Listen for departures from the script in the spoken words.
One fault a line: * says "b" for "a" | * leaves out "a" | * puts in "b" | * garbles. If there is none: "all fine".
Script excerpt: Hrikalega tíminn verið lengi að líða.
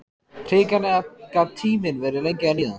* puts in "gat"